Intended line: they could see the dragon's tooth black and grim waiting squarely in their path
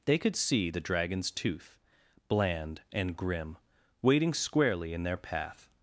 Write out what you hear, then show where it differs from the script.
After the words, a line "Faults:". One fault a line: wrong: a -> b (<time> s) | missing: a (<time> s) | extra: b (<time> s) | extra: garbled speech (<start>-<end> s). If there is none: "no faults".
they could see the dragon's tooth bland and grim waiting squarely in their path
Faults:
wrong: black -> bland (2.3 s)